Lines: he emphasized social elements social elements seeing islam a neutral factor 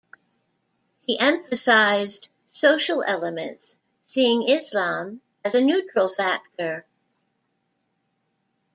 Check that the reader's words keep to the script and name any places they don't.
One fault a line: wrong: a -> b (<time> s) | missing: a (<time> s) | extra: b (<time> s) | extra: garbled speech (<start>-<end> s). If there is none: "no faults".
missing: social elements (3.8 s)
extra: as (5.4 s)